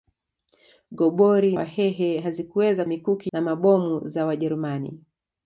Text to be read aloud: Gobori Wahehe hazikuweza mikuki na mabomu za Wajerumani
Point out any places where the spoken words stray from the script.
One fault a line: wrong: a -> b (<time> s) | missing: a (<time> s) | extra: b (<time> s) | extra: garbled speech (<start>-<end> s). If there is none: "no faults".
no faults